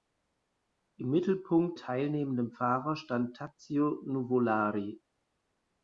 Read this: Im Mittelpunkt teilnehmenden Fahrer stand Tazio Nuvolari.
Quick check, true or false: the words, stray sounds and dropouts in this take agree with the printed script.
true